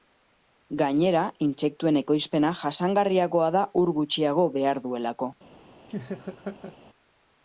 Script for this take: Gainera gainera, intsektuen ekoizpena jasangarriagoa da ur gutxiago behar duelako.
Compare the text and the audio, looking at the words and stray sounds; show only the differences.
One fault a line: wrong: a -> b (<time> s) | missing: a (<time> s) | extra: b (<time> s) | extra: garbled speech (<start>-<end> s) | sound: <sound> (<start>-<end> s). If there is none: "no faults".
missing: gainera (1.2 s)
sound: laugh (5.9-6.8 s)